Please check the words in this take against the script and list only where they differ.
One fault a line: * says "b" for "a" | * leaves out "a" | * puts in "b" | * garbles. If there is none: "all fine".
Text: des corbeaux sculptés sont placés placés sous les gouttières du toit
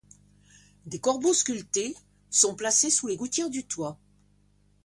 * leaves out "placés"